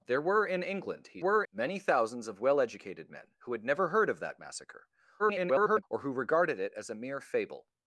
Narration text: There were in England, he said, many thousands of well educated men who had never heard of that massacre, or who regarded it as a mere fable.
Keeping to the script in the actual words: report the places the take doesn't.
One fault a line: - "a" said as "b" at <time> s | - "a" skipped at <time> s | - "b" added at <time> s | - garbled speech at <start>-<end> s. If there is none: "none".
- "said" said as "were" at 1.2 s
- garbled speech at 5.2-5.8 s